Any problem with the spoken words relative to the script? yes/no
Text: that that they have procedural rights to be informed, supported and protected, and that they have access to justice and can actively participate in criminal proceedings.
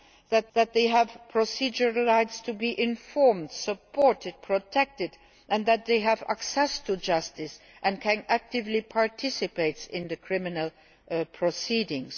no